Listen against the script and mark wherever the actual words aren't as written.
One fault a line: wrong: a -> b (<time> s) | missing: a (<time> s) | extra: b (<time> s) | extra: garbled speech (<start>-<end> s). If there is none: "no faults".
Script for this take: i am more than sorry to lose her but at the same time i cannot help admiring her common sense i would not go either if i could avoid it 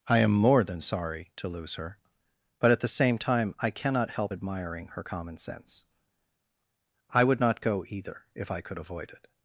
no faults